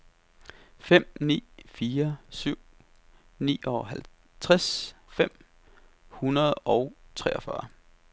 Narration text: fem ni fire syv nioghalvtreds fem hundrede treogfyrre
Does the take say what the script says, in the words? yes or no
no